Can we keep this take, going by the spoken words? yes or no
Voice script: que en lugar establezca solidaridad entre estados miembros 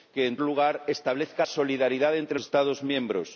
yes